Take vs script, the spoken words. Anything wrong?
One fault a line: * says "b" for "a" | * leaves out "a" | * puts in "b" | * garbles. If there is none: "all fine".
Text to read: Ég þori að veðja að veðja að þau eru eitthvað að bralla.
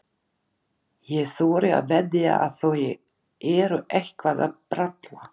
* leaves out "veðja að"